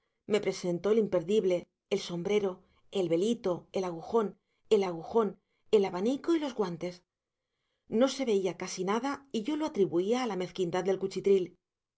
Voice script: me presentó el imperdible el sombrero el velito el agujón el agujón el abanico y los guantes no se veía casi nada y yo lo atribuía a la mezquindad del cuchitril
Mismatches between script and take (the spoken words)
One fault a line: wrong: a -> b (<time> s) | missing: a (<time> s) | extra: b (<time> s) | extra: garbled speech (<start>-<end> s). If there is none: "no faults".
no faults